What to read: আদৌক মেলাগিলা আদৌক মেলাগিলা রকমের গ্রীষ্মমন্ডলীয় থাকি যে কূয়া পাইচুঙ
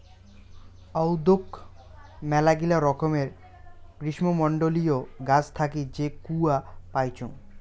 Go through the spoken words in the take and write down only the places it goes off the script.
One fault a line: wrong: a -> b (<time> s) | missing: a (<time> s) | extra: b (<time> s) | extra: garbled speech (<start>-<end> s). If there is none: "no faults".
missing: আদৌক মেলাগিলা (2.8 s)
extra: গাছ (5.3 s)